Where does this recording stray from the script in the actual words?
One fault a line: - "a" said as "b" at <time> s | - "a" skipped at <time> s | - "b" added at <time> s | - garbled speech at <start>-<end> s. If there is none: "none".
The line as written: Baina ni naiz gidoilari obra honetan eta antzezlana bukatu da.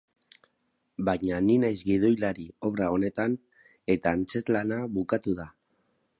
none